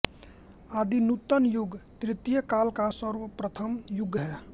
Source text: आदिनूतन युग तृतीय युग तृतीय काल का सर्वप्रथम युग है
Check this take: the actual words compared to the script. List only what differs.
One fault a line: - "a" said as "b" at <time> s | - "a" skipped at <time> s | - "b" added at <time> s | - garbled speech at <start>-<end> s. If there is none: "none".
- "युग तृतीय" skipped at 2.4 s